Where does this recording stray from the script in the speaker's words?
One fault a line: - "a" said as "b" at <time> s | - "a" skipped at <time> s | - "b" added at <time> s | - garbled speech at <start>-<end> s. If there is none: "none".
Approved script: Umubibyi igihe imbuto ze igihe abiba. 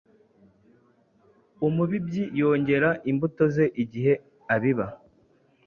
- "igihe" said as "yongera" at 2.4 s